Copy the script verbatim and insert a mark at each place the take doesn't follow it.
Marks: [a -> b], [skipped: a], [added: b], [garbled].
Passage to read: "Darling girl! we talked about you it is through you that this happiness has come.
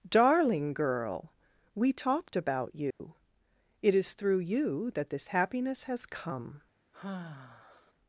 "Darling girl! we talked about you it is through you that this happiness has come.